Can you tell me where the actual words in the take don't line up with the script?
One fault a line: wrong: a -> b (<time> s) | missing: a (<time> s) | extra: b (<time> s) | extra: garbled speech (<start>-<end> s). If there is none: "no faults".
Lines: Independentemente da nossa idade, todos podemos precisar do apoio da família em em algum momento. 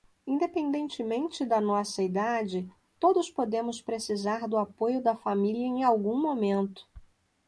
missing: em (5.8 s)